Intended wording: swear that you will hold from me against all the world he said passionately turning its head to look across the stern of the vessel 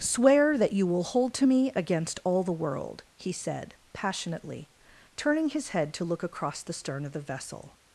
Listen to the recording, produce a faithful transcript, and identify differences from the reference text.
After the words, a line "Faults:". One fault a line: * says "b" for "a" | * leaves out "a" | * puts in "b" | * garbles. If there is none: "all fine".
swear that you will hold to me against all the world he said passionately turning his head to look across the stern of the vessel
Faults:
* says "to" for "from"
* says "his" for "its"